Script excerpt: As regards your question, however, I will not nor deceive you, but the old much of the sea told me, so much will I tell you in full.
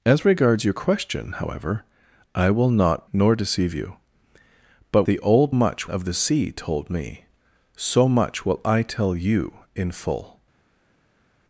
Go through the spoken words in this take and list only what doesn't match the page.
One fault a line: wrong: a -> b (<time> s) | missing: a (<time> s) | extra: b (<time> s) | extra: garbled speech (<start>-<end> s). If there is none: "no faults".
no faults